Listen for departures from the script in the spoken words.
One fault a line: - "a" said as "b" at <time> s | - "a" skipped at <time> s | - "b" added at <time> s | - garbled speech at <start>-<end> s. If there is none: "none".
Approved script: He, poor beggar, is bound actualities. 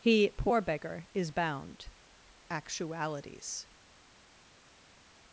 none